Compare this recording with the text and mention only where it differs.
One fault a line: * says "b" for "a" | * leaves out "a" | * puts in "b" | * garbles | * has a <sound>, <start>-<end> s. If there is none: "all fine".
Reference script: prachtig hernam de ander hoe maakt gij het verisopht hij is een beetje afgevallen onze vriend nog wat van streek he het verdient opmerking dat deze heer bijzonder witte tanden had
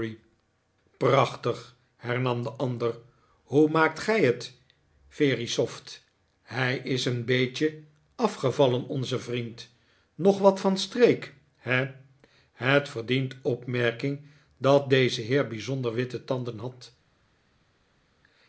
all fine